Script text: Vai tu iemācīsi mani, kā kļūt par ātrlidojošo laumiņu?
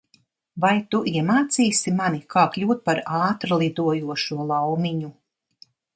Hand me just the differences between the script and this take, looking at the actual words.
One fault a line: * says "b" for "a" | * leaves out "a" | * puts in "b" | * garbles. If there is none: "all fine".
all fine